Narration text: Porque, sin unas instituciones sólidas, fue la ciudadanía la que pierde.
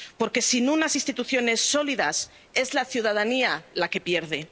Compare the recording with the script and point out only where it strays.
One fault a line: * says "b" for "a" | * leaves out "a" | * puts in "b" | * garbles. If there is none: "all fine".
* says "es" for "fue"